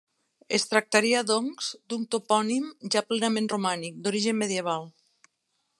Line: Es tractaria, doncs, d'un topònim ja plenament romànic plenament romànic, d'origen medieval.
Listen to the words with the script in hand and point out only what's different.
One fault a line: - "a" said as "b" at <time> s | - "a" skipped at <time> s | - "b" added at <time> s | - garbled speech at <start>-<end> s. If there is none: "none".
- "plenament romànic" skipped at 4.0 s